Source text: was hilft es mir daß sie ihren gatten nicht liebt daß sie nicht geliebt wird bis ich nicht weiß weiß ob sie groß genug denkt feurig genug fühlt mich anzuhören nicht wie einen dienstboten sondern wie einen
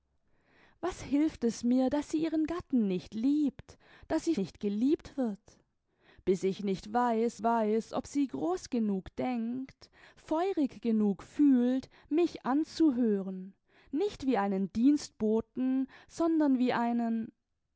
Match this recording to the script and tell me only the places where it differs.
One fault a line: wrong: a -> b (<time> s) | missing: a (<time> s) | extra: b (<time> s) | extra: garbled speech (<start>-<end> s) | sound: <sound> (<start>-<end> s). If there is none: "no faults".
no faults